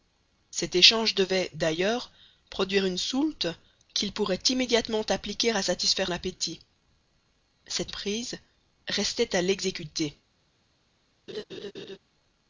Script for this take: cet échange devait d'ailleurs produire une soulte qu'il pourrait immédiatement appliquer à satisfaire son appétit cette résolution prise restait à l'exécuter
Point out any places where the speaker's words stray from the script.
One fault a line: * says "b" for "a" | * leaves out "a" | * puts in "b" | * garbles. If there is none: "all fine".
* leaves out "son"
* leaves out "résolution"